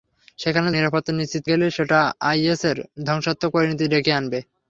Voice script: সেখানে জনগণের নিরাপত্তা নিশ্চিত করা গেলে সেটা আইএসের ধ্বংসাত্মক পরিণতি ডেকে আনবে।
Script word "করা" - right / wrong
wrong